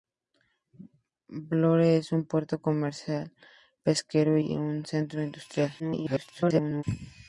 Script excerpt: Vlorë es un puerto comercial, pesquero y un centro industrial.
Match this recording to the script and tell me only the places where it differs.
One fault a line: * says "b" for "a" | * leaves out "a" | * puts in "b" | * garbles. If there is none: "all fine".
* garbles